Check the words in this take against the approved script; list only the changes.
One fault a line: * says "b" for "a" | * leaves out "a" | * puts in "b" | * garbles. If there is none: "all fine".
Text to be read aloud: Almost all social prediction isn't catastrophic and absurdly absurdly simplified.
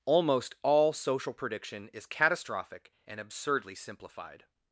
* says "is" for "isn't"
* leaves out "absurdly"